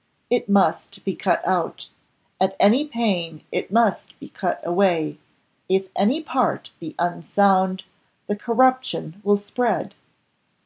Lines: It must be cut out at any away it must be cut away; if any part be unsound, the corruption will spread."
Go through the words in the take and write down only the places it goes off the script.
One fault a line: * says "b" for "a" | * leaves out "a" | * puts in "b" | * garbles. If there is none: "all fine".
* says "pain" for "away"